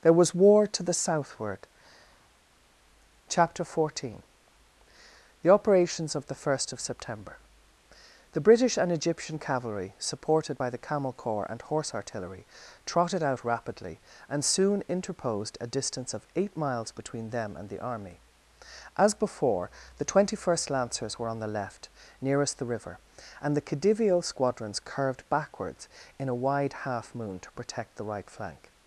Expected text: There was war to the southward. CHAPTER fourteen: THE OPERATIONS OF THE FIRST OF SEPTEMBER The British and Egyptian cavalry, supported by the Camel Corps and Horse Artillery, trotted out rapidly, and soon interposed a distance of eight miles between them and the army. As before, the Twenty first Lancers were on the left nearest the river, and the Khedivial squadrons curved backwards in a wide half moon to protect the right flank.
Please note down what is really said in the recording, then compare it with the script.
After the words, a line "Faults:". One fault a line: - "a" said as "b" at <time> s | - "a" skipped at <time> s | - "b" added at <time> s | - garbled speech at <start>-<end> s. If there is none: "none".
There was war to the southward. CHAPTER fourteen: THE OPERATIONS OF THE FIRST OF SEPTEMBER The British and Egyptian cavalry, supported by the Camel Corps and Horse Artillery, trotted out rapidly, and soon interposed a distance of eight miles between them and the army. As before, the Twenty first Lancers were on the left nearest the river, and the Khedivial squadrons curved backwards in a wide half moon to protect the right flank.
Faults:
none